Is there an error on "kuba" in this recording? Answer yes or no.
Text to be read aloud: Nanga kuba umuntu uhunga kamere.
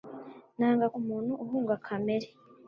yes